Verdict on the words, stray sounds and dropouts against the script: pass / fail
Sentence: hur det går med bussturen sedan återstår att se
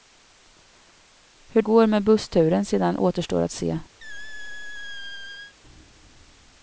fail